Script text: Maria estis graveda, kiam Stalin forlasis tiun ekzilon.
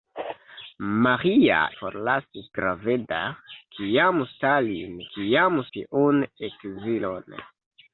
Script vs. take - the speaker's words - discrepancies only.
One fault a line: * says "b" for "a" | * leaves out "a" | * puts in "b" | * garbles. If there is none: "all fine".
* says "forlasis" for "estis"
* says "kiam" for "forlasis"